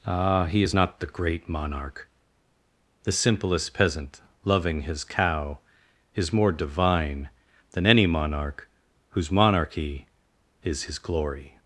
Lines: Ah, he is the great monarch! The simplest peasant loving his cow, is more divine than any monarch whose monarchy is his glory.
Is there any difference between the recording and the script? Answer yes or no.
yes